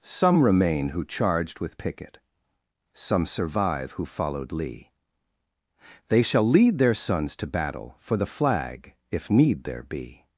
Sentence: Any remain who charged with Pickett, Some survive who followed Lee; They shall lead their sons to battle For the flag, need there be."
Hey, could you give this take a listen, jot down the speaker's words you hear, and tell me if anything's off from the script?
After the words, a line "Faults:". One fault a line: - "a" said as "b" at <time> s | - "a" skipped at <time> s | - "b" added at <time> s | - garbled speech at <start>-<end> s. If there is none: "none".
Some remain who charged with Pickett, Some survive who followed Lee; They shall lead their sons to battle For the flag, if need there be."
Faults:
- "Any" said as "Some" at 0.0 s
- "if" added at 9.1 s